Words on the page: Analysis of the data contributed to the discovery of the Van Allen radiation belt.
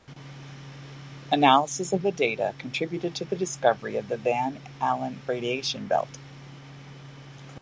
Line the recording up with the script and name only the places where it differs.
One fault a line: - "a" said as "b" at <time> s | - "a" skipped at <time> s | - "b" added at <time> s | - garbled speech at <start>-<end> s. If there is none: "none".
none